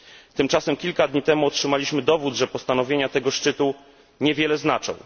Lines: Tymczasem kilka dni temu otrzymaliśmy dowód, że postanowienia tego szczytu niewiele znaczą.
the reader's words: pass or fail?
pass